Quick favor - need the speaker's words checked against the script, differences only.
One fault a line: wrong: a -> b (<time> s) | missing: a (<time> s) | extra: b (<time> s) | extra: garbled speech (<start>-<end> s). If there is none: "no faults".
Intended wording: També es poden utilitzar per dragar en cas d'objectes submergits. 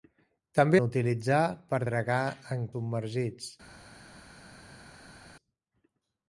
missing: es poden (0.8 s)
missing: cas d'objectes (2.7 s)